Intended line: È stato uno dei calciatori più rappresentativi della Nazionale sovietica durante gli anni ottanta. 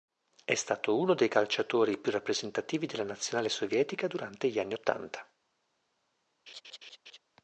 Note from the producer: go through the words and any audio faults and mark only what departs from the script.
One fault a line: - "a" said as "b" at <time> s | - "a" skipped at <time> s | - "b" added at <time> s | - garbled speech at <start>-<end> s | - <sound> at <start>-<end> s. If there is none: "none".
- laugh at 6.5-7.2 s